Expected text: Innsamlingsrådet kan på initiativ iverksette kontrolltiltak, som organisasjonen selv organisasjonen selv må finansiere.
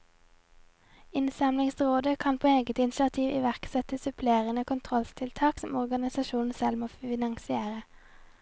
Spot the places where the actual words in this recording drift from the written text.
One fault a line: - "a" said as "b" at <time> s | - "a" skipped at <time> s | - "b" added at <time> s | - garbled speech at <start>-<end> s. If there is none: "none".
- "eget" added at 2.5 s
- "supplerende" added at 4.0 s
- "organisasjonen selv" skipped at 6.8 s